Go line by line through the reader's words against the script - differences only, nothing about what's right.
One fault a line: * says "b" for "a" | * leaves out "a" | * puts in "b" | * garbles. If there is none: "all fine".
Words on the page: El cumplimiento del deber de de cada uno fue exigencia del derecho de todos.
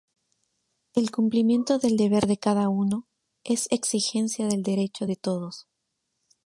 * leaves out "de"
* says "es" for "fue"